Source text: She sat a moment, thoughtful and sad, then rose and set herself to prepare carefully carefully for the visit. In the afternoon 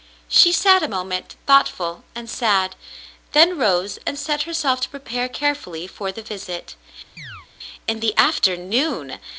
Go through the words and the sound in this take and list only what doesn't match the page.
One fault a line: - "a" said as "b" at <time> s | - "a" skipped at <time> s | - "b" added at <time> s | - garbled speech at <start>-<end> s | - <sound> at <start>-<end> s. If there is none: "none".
- "carefully" skipped at 5.9 s
- chirp at 7.2-7.5 s